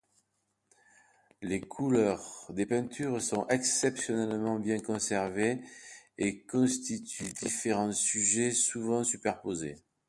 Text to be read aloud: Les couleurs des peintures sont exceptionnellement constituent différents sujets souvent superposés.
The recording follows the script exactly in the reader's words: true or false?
false